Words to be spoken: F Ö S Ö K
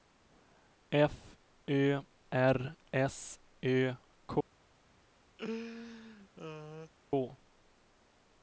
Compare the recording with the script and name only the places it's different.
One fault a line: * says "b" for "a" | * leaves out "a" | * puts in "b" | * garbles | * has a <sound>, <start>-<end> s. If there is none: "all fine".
* puts in "R"
* has a laugh, 5.4-6.9 s